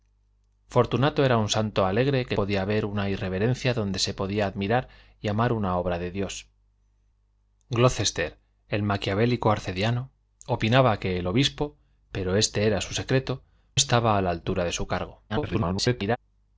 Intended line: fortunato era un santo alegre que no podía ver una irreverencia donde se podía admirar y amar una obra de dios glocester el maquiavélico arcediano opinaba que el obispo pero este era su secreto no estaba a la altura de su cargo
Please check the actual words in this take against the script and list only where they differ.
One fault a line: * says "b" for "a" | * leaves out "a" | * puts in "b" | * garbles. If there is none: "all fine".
* leaves out "no"
* leaves out "no"
* garbles